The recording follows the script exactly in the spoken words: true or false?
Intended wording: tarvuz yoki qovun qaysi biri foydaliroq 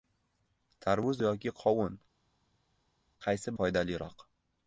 false